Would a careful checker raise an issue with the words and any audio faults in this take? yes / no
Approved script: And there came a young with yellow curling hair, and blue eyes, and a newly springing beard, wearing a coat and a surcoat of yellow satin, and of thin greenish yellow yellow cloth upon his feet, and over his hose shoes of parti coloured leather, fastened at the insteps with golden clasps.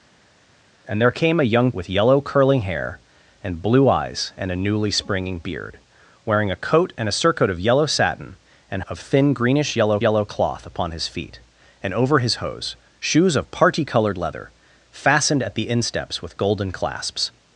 no